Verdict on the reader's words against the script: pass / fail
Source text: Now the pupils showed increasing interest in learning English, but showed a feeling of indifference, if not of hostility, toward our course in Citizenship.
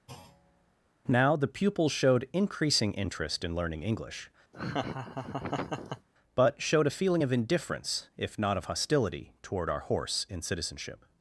fail